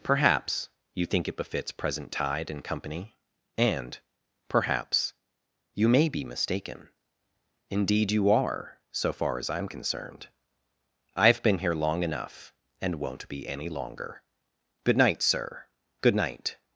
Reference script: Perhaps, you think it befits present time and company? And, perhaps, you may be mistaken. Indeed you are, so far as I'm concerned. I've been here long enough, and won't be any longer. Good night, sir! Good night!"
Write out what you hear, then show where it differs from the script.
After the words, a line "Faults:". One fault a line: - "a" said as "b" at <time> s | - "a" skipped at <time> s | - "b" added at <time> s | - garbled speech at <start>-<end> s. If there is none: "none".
Perhaps, you think it befits present tide and company? And, perhaps, you may be mistaken. Indeed you are, so far as I'm concerned. I've been here long enough, and won't be any longer. Good night, sir! Good night!"
Faults:
- "time" said as "tide" at 2.1 s